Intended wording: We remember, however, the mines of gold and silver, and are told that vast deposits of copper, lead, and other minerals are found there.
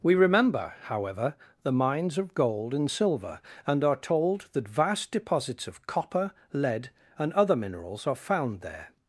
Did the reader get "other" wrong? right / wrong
right